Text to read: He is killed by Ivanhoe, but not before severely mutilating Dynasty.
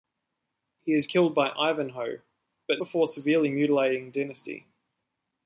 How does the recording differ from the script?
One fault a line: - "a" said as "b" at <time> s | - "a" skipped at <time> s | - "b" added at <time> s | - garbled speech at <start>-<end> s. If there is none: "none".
- "not" skipped at 2.8 s